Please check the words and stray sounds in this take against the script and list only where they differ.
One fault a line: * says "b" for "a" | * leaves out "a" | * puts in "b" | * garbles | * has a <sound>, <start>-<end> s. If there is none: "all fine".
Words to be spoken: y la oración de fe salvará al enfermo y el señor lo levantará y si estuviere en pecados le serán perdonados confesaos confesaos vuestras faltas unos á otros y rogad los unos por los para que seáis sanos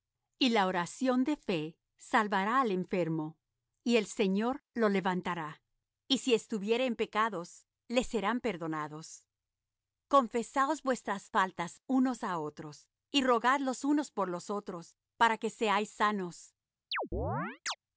* leaves out "confesaos"
* puts in "otros"
* has a chirp, 16.9-17.8 s